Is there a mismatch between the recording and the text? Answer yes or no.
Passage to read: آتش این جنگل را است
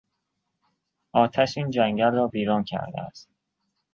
yes